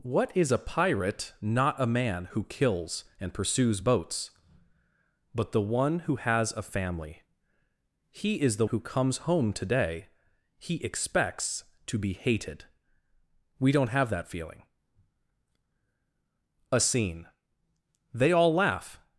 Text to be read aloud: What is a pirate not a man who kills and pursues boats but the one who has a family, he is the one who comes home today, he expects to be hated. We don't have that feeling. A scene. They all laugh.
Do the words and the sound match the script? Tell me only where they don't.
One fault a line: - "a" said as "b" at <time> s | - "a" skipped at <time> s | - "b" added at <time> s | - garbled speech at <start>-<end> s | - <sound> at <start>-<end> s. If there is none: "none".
- "one" skipped at 8.7 s